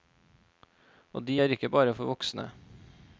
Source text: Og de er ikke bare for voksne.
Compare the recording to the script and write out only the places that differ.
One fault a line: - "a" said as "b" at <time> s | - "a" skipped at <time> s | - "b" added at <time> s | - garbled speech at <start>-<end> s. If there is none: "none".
none